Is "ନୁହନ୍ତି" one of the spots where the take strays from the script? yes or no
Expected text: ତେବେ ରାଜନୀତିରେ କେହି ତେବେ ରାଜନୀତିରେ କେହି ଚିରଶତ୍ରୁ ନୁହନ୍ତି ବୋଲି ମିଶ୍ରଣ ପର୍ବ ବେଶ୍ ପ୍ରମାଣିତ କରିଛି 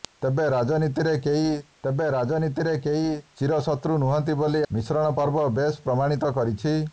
no